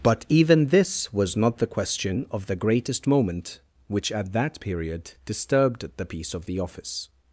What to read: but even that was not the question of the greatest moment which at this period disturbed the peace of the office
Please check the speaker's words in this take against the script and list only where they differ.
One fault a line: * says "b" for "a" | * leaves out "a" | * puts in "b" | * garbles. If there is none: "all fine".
* says "this" for "that"
* says "that" for "this"